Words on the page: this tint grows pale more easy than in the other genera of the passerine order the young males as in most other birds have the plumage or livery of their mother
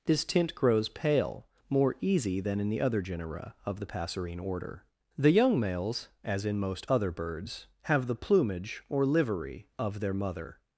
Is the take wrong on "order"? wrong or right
right